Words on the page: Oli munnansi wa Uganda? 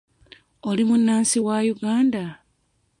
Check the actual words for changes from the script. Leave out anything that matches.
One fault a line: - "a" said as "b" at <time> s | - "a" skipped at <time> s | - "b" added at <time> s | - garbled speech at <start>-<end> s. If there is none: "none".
none